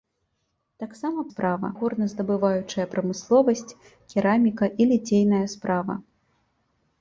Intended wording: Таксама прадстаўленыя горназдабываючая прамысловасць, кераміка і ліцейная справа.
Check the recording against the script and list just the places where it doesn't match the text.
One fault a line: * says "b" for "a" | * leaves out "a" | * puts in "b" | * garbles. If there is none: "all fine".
* says "справа" for "прадстаўленыя"